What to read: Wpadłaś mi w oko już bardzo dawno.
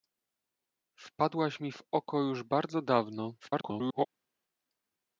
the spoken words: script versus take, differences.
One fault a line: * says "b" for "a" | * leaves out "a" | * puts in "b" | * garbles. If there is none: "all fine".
* garbles